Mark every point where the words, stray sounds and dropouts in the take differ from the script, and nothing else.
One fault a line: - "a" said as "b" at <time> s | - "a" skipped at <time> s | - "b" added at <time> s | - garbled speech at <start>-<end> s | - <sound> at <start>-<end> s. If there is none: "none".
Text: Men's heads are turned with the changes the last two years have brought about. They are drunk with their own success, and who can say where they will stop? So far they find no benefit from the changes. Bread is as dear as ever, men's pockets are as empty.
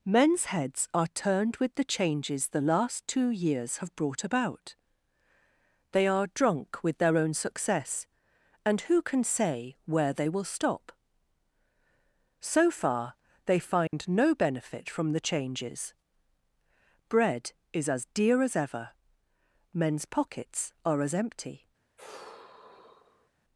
- dropout at 13.9-13.9 s
- sigh at 22.0-23.3 s